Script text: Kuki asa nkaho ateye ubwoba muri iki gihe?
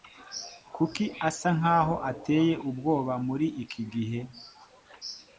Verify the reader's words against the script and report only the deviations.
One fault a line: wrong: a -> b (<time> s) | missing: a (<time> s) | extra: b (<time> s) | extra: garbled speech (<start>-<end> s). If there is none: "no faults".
no faults